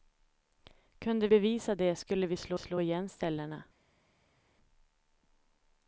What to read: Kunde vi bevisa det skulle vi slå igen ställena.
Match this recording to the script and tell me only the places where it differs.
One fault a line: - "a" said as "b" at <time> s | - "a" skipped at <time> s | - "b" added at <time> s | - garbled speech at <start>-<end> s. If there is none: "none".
- "vi" skipped at 1.3 s
- "slå" added at 2.6 s